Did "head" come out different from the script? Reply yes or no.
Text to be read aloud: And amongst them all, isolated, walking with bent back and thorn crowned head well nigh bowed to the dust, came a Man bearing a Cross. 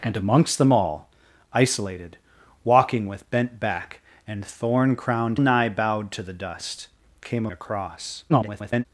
yes